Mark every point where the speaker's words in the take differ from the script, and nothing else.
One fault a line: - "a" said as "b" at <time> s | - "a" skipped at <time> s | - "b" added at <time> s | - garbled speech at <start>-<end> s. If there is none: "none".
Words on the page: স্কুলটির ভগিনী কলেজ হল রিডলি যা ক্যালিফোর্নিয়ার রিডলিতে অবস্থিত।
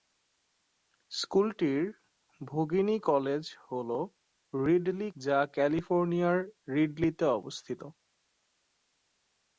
none